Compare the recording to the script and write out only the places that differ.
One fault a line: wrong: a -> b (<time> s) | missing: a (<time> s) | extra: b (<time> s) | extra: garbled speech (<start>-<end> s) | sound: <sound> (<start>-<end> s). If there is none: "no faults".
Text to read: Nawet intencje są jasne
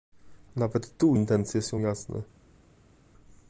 extra: tu (1.0 s)